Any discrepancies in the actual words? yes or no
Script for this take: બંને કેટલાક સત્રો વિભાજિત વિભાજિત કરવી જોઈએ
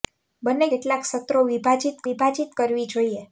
no